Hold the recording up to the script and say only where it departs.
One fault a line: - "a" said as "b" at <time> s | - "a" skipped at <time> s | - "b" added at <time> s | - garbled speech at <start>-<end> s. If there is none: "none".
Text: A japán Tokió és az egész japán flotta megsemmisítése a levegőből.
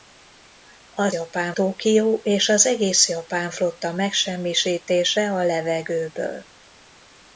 none